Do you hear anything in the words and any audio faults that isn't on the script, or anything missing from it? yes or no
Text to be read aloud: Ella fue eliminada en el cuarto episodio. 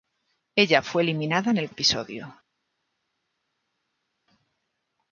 yes